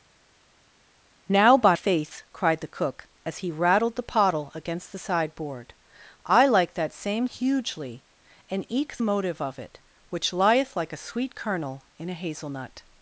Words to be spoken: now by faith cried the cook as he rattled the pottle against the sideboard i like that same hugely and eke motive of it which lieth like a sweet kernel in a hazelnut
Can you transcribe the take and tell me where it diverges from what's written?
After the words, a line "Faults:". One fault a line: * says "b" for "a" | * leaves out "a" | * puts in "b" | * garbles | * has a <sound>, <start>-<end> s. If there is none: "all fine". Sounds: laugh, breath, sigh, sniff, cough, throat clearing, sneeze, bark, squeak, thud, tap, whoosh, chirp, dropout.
now by faith cried the cook as he rattled the pottle against the sideboard i like that same hugely and eke motive of it which lieth like a sweet kernel in a hazelnut
Faults:
all fine